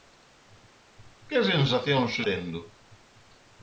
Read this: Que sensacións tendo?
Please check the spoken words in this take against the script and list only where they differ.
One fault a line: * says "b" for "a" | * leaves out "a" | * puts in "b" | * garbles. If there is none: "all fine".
all fine